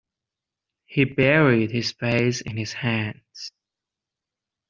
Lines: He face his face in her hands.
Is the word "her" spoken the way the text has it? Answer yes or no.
no